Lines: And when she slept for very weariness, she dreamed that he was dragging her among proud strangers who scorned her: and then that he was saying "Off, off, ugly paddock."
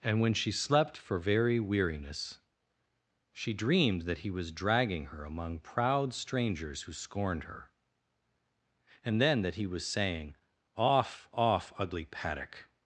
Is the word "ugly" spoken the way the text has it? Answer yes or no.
yes